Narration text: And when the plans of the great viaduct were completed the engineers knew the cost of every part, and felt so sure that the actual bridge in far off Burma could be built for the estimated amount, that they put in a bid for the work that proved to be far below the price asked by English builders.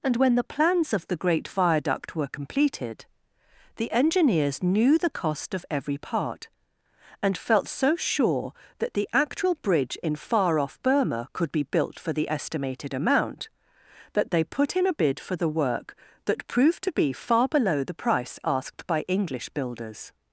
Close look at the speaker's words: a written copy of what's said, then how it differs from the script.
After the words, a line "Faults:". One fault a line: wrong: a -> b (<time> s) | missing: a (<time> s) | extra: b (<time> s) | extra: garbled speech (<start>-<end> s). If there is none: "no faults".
And when the plans of the great viaduct were completed the engineers knew the cost of every part, and felt so sure that the actual bridge in far off Burma could be built for the estimated amount, that they put in a bid for the work that proved to be far below the price asked by English builders.
Faults:
no faults